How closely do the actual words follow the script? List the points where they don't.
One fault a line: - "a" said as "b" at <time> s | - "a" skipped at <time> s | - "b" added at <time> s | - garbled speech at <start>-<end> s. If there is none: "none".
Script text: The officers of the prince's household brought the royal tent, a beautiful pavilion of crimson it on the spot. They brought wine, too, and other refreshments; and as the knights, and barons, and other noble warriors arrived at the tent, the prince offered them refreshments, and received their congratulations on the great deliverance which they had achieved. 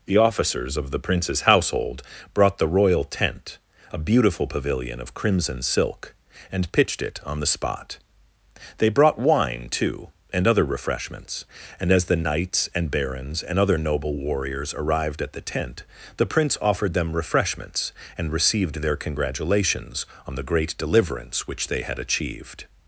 - "silk and pitched" added at 5.6 s